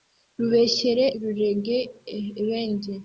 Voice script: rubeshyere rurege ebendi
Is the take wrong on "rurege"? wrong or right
right